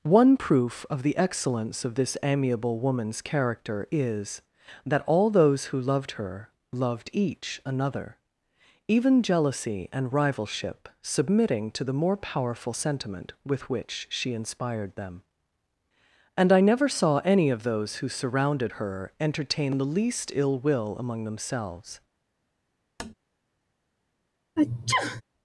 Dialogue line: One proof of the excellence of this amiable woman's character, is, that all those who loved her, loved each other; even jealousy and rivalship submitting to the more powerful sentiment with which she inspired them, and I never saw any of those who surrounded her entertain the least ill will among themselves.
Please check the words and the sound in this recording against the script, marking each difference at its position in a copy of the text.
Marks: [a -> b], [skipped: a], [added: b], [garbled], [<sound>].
One proof of the excellence of this amiable woman's character, is, that all those who loved her, loved each [other; -> another] even jealousy and rivalship submitting to the more powerful sentiment with which she inspired them, and I never saw any of those who surrounded her entertain the least ill will among themselves. [tap] [sneeze]